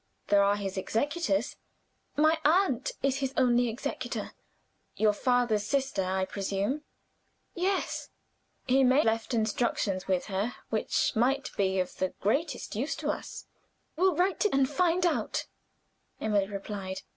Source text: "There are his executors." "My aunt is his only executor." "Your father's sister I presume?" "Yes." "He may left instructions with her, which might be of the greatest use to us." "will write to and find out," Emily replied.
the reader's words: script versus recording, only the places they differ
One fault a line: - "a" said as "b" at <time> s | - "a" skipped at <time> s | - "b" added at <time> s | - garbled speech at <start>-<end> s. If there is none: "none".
none